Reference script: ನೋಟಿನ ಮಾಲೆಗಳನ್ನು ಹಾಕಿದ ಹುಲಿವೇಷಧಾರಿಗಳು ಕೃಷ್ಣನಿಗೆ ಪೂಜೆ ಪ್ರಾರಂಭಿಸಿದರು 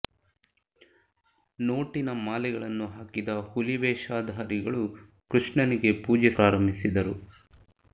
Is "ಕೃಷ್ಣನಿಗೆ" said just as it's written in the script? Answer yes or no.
yes